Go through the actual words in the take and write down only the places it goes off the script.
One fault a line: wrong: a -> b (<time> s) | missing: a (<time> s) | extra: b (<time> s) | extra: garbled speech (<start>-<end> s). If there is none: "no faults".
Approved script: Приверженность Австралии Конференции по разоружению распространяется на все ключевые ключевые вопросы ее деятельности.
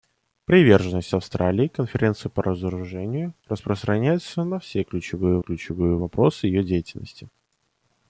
no faults